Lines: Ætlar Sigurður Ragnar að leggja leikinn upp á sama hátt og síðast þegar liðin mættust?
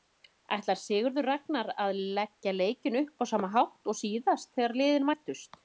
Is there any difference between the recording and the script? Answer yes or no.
no